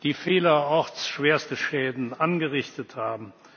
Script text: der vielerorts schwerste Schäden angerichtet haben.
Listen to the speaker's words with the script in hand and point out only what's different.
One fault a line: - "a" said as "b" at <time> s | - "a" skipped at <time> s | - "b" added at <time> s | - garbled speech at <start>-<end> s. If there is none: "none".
- "der" said as "die" at 0.0 s